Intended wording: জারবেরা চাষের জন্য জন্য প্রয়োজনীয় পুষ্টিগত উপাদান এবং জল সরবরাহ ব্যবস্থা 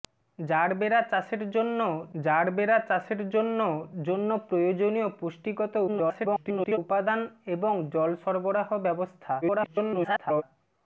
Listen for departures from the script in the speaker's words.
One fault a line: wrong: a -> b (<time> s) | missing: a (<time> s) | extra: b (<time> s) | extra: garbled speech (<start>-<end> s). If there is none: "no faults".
extra: জারবেরা চাষের জন্য (2.1 s)
extra: garbled speech (5.9-6.8 s)
extra: garbled speech (9.4-10.4 s)